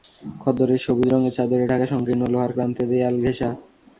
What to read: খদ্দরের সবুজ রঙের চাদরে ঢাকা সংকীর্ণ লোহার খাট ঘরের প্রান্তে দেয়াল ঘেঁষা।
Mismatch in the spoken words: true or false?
true